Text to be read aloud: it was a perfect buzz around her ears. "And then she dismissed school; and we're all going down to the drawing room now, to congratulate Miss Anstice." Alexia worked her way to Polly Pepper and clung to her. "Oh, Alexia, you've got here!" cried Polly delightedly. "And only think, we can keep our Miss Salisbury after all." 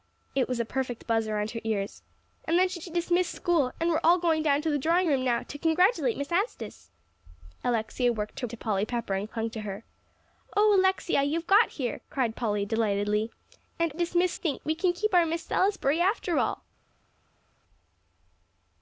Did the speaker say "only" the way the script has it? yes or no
no